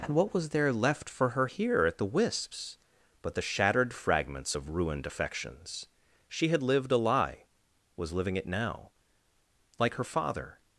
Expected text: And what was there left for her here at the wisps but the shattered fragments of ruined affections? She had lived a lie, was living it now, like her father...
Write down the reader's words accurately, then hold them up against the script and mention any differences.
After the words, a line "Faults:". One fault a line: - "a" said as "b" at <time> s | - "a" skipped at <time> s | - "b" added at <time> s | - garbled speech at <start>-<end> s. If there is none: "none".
And what was there left for her here at the wisps but the shattered fragments of ruined affections? She had lived a lie, was living it now, like her father...
Faults:
none